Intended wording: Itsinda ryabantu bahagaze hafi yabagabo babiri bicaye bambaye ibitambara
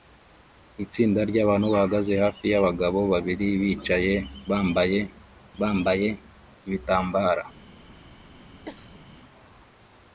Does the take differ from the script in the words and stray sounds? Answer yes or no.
yes